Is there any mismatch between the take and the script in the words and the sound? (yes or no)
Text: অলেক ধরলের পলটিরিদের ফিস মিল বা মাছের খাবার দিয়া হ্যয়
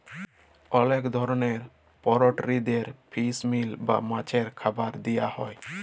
no